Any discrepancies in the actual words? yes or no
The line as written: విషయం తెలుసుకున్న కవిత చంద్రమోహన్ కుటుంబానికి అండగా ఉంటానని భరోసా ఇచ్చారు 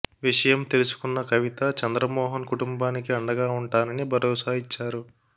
no